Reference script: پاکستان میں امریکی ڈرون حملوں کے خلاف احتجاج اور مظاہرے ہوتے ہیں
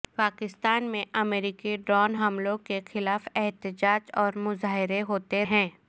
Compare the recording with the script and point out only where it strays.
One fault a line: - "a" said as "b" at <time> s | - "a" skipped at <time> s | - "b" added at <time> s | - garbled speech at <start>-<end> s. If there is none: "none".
none